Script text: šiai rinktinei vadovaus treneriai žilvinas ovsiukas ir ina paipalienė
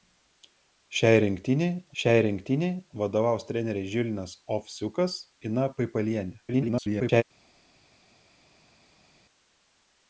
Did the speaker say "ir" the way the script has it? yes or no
no